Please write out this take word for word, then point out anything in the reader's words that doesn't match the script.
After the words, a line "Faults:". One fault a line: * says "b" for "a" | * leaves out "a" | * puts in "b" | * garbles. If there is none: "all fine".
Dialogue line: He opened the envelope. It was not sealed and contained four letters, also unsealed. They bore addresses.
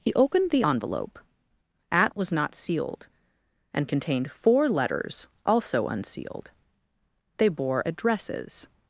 He opened the envelope. At was not sealed and contained four letters, also unsealed. They bore addresses.
Faults:
* says "At" for "It"